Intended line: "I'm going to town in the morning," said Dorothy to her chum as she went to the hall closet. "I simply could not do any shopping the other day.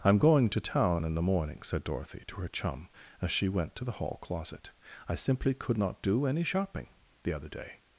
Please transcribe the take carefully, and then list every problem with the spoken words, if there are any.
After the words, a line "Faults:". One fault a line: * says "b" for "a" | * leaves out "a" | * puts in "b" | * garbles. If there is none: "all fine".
"I'm going to town in the morning," said Dorothy to her chum as she went to the hall closet. "I simply could not do any shopping the other day.
Faults:
all fine